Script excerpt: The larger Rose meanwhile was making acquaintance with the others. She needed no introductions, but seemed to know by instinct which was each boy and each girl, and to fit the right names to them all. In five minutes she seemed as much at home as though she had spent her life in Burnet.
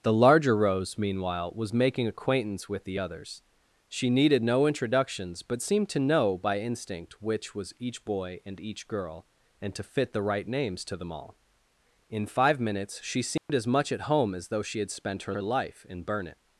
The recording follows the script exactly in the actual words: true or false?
false